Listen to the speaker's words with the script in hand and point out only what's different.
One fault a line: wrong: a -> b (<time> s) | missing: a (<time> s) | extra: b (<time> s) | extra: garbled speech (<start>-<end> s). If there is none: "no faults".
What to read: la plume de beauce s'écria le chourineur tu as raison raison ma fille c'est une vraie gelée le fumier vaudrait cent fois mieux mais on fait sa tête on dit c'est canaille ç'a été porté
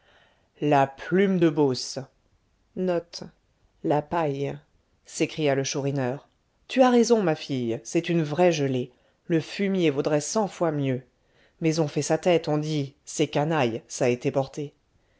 missing: raison (7.2 s)